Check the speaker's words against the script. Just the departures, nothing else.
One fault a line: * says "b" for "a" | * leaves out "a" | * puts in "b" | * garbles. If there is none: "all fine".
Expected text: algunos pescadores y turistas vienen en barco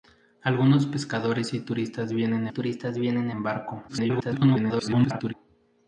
* puts in "turistas vienen"
* garbles